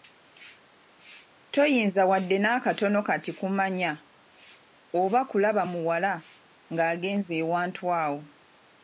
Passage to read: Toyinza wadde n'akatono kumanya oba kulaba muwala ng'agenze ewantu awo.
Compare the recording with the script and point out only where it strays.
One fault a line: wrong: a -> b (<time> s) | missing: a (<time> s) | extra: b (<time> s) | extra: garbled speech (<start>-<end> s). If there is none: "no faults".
extra: kati (3.1 s)